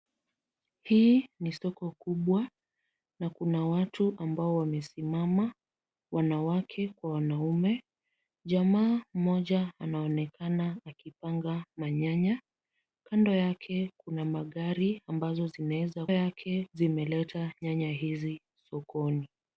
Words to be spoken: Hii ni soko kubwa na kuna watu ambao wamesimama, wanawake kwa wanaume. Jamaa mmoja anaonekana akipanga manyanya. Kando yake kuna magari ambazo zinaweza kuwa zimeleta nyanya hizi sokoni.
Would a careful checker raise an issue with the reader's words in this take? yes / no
yes